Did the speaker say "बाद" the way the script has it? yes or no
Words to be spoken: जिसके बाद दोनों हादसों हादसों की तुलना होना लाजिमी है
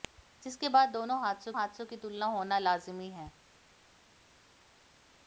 yes